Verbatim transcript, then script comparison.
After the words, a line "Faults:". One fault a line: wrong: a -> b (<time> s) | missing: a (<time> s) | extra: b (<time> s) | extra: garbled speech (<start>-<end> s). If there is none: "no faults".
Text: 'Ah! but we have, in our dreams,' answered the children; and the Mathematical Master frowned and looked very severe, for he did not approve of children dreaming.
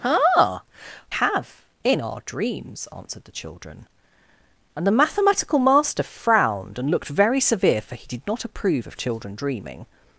'Ah! have, in our dreams,' answered the children; and the Mathematical Master frowned and looked very severe, for he did not approve of children dreaming.
Faults:
missing: but we (0.6 s)